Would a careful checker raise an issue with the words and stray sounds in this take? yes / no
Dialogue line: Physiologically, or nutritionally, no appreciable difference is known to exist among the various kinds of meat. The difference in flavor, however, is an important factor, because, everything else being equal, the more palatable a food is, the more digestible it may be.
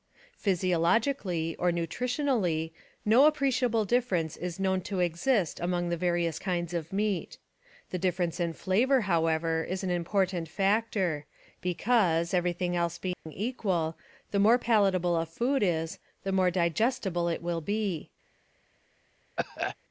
yes